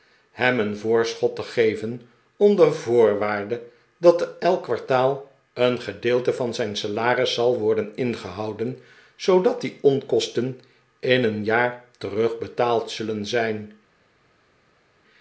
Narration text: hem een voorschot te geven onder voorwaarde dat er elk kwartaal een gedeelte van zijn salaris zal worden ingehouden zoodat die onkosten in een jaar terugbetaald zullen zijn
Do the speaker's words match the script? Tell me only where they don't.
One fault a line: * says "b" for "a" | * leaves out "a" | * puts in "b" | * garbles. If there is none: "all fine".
all fine